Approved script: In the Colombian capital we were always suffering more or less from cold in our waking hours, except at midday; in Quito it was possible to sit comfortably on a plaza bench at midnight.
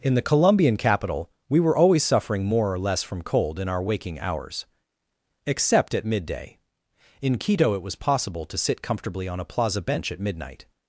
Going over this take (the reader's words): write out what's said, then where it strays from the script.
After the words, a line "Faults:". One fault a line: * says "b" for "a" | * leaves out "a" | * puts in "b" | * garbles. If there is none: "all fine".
In the Colombian capital we were always suffering more or less from cold in our waking hours, except at midday; in Quito it was possible to sit comfortably on a plaza bench at midnight.
Faults:
all fine